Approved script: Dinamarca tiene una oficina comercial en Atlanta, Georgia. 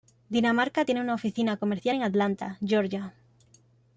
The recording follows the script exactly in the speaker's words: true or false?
true